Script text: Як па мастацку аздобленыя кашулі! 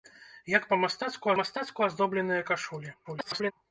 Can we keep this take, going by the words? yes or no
no